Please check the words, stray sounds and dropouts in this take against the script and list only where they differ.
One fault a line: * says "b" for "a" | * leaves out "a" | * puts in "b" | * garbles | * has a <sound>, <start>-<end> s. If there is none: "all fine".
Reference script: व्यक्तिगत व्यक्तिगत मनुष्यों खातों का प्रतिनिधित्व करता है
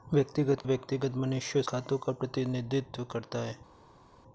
all fine